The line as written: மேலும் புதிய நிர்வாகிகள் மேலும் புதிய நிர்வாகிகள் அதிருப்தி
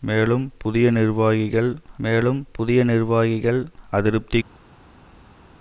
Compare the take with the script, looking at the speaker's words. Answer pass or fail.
pass